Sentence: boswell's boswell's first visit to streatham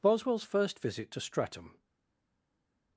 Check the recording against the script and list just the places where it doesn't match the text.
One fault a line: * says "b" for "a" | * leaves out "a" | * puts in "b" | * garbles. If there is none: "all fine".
* leaves out "boswell's"